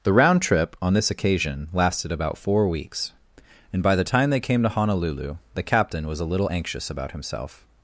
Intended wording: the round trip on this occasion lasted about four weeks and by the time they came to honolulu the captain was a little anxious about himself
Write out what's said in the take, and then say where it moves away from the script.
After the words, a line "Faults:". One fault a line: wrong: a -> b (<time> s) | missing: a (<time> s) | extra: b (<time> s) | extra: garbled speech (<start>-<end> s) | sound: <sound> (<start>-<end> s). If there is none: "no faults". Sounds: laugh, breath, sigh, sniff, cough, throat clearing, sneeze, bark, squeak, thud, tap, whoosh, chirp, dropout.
the round trip on this occasion lasted about four weeks and by the time they came to honolulu the captain was a little anxious about himself
Faults:
no faults